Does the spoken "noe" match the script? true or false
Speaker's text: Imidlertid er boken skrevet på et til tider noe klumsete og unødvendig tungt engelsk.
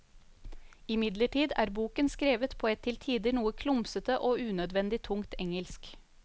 true